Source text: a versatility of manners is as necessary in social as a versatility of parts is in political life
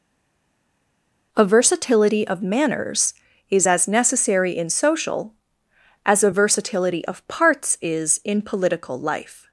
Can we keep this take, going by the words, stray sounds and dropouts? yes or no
yes